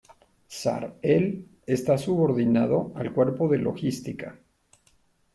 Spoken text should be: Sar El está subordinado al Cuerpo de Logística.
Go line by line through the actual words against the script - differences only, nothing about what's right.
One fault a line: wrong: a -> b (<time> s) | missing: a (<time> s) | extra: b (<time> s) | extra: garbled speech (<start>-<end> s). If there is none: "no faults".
no faults